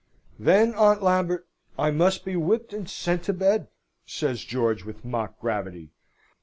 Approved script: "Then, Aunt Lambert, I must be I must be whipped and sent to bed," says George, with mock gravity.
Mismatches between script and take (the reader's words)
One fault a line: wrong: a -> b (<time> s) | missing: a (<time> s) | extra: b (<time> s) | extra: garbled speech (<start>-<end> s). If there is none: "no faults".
missing: I must be (2.4 s)